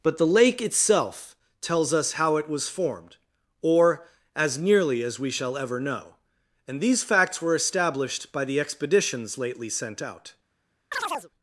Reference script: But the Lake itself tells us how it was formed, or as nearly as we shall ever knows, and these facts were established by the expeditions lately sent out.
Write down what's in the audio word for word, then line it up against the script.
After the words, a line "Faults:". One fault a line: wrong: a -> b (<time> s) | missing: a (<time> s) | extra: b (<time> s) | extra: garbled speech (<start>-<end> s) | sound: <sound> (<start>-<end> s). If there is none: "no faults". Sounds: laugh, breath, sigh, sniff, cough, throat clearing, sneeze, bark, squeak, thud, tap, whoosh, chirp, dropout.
But the Lake itself tells us how it was formed, or as nearly as we shall ever know, and these facts were established by the expeditions lately sent out.
Faults:
wrong: knows -> know (5.8 s)
sound: chirp (10.9-11.3 s)